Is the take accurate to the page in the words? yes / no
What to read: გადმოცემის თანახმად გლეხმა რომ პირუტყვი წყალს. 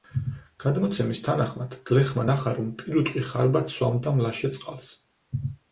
no